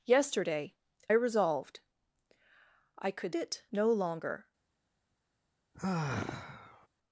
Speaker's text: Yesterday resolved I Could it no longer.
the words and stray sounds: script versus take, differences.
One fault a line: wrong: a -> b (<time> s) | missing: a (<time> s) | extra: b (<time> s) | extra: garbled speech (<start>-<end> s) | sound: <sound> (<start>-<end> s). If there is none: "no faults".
sound: sigh (5.7-6.9 s)